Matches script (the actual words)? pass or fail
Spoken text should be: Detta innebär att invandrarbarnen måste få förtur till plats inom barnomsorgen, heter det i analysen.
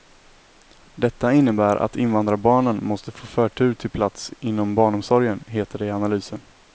pass